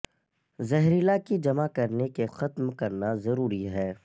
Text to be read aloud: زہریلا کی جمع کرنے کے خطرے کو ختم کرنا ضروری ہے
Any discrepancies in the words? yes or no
yes